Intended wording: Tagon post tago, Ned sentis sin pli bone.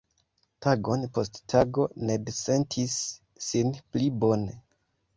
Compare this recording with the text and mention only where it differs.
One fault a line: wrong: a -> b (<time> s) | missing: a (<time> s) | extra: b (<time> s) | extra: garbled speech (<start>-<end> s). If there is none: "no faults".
no faults